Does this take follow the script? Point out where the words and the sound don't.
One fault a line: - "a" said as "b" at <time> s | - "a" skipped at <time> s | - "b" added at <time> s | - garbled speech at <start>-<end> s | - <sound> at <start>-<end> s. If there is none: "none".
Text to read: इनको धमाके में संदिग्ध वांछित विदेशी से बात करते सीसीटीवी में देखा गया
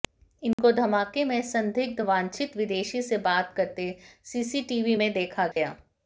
- dropout at 0.5-0.6 s
- dropout at 5.5-5.6 s